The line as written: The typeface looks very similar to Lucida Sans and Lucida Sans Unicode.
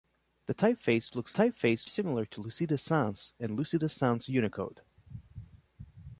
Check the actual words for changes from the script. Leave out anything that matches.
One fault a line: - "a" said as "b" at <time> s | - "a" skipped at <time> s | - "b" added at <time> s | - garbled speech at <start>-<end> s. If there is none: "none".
- "very" said as "typeface" at 1.3 s